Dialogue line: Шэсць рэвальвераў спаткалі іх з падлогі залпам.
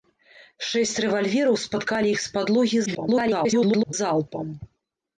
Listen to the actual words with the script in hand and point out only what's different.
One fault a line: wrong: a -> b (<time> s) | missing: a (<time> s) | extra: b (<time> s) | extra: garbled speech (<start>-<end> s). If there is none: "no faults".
extra: garbled speech (2.9-3.9 s)